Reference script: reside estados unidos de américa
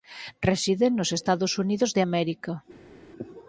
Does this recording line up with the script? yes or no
no